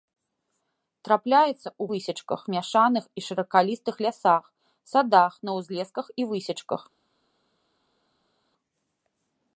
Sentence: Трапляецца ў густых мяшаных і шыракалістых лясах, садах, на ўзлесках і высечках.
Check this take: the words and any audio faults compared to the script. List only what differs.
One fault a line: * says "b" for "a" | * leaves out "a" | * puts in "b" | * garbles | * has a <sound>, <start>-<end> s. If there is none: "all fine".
* says "высечках" for "густых"